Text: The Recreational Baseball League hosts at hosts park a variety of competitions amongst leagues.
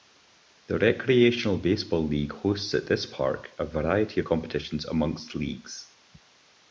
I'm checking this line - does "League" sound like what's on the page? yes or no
yes